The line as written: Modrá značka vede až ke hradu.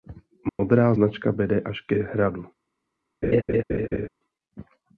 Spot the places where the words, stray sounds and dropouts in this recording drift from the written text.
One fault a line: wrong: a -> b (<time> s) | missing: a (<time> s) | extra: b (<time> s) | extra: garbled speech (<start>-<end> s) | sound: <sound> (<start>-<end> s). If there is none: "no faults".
sound: dropout (0.5-0.6 s)
sound: laugh (3.2-4.1 s)